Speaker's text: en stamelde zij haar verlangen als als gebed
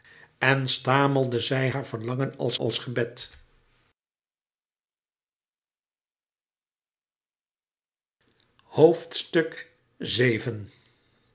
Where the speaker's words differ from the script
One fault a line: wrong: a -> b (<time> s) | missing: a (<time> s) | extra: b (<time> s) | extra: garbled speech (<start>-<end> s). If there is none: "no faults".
no faults